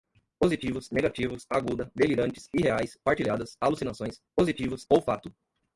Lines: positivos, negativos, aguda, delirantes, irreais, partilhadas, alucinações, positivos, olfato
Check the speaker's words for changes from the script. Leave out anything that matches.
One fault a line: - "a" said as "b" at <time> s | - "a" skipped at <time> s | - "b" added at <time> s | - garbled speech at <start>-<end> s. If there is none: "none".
none